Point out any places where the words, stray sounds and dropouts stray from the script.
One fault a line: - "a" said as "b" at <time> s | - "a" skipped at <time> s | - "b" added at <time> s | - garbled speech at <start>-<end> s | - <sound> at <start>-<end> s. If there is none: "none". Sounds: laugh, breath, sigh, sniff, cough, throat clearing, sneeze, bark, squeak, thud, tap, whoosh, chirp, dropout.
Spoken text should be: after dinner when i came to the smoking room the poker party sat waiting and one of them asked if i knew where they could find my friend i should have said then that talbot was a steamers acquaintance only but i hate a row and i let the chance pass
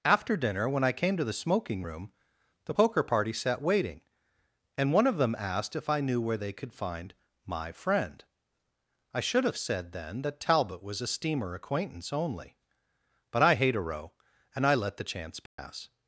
- "steamers" said as "steamer" at 11.1 s
- dropout at 15.5-15.6 s